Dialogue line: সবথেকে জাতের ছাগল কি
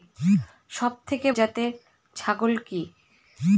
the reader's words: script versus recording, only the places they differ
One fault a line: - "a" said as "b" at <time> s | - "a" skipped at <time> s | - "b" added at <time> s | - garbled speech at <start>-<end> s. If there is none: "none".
none